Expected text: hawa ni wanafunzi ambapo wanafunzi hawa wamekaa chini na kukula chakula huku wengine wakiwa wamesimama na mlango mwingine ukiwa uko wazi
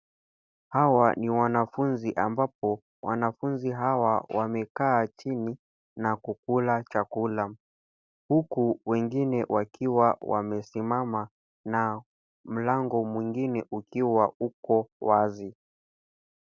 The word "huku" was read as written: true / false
true